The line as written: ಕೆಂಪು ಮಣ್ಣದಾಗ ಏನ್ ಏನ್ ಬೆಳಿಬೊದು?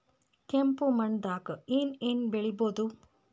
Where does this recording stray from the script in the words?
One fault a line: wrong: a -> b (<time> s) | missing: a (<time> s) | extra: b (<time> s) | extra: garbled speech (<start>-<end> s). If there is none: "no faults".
no faults